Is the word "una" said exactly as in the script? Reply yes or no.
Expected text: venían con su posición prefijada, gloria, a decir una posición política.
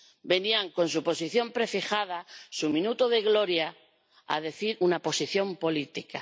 yes